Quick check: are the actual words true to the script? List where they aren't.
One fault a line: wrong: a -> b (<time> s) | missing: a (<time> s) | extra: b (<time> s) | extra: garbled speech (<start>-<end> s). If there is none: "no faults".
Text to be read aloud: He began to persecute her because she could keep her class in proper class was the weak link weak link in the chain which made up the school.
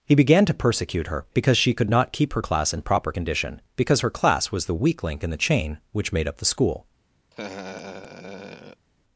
extra: not (1.9 s)
extra: condition because her (3.1 s)
missing: weak link (5.2 s)